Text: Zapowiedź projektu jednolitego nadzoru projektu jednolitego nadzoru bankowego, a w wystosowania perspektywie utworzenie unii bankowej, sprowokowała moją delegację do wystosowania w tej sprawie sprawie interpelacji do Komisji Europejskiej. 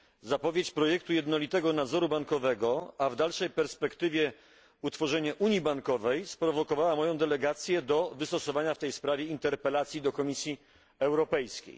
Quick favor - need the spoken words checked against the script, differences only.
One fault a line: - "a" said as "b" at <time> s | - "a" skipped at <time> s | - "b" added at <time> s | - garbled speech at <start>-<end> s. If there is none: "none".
- "projektu jednolitego nadzoru" skipped at 2.1 s
- "wystosowania" said as "dalszej" at 3.1 s
- "sprawie" skipped at 9.2 s